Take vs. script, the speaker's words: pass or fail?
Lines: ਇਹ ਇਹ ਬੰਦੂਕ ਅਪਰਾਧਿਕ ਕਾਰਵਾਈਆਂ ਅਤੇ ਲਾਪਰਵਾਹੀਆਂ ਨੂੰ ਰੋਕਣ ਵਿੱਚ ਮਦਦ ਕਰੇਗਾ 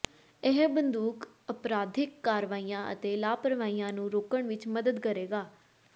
fail